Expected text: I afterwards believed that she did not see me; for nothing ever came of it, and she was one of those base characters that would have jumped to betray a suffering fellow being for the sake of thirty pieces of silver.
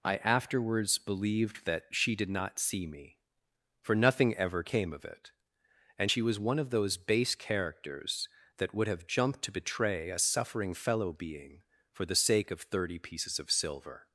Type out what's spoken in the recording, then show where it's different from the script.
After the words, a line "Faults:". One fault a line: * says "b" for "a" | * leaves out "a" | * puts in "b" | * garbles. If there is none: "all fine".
I afterwards believed that she did not see me; for nothing ever came of it, and she was one of those base characters that would have jumped to betray a suffering fellow being for the sake of thirty pieces of silver.
Faults:
all fine